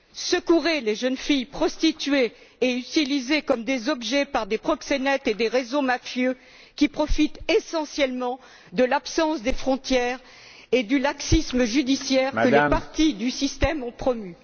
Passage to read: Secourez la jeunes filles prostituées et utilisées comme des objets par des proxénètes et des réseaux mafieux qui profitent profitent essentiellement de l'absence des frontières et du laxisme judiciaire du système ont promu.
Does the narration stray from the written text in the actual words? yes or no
yes